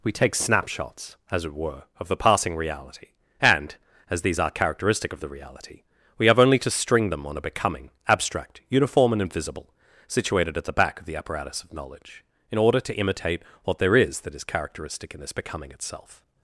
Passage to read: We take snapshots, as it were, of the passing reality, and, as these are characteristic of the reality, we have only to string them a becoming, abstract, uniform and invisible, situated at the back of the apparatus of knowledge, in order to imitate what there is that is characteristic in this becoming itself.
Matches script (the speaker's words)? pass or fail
fail